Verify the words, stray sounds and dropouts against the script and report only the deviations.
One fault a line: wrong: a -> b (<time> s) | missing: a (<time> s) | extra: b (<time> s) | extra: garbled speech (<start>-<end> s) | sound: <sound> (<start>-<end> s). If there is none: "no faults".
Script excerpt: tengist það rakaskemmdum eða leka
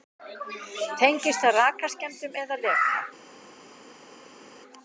no faults